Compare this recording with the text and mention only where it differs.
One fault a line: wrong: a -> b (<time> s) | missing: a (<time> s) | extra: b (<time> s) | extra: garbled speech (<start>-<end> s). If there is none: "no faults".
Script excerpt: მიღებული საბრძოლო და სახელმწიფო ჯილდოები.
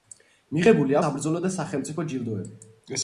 no faults